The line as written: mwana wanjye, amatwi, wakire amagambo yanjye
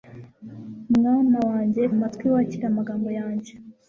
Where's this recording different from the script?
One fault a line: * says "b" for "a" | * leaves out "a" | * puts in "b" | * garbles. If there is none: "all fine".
all fine